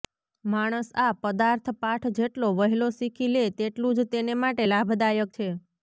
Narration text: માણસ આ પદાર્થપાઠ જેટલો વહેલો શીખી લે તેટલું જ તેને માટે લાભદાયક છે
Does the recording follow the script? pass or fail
pass